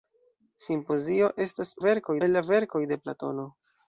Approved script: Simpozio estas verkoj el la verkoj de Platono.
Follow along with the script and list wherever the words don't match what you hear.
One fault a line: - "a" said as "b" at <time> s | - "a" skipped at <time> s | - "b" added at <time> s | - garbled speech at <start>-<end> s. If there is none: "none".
none